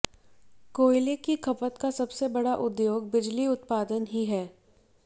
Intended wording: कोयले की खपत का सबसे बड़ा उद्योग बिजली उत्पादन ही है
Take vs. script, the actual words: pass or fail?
pass